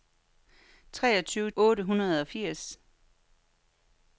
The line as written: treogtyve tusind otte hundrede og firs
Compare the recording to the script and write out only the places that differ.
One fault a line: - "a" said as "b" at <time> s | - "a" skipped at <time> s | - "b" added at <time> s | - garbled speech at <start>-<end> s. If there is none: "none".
- "tusind" skipped at 1.5 s